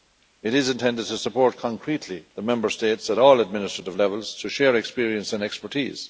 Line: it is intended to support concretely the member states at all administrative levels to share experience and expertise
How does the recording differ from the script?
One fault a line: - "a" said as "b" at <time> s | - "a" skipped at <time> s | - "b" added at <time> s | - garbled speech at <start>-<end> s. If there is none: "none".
none